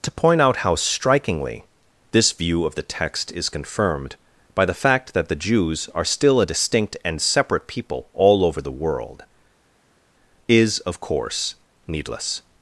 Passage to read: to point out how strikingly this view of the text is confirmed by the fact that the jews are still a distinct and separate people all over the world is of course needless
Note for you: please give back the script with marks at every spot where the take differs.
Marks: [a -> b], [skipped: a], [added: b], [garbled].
to point out how strikingly this view of the text is confirmed by the fact that the jews are still a distinct and separate people all over the world is of course needless